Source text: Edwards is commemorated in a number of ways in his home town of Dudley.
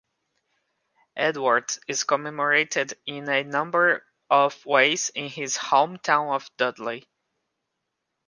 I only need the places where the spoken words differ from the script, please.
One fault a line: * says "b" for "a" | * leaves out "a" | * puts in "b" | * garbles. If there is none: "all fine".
all fine